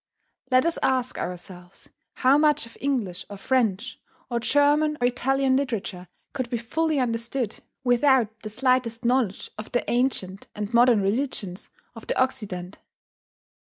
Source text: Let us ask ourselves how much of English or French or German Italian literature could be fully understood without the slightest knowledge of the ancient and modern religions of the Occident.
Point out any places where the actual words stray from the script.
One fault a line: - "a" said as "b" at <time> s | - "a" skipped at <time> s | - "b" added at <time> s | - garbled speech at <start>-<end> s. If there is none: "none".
none